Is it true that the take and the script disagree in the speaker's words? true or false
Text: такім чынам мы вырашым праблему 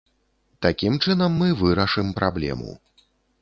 false